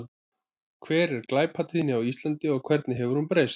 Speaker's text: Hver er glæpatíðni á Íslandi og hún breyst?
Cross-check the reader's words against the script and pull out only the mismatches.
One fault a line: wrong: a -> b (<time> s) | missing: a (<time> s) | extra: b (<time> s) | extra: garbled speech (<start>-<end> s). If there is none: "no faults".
extra: hvernig hefur (2.7 s)